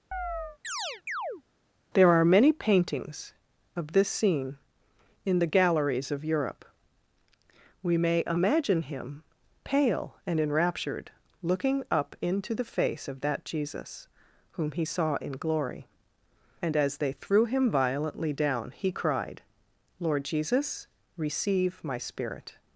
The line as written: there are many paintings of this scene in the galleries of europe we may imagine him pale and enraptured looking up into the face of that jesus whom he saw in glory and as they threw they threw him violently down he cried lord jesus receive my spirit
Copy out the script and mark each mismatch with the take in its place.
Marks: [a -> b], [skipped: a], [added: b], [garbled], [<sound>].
[chirp] there are many paintings of this scene in the galleries of europe we may imagine him pale and enraptured looking up into the face of that jesus whom he saw in glory and as they threw [skipped: they threw] him violently down he cried lord jesus receive my spirit